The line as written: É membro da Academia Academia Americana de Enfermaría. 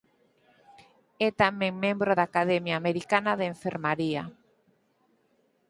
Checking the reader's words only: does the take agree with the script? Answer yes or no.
no